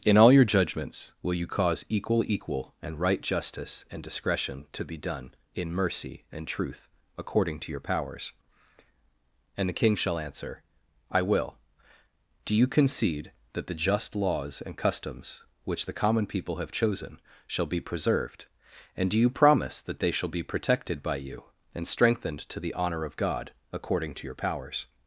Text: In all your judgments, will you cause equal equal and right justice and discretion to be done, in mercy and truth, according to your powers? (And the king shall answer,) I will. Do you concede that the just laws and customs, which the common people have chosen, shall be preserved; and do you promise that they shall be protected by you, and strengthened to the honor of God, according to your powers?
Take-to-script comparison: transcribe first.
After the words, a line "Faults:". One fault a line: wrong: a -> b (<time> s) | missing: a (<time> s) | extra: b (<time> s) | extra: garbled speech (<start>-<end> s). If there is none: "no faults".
In all your judgments, will you cause equal equal and right justice and discretion to be done, in mercy and truth, according to your powers? (And the king shall answer,) I will. Do you concede that the just laws and customs, which the common people have chosen, shall be preserved; and do you promise that they shall be protected by you, and strengthened to the honor of God, according to your powers?
Faults:
no faults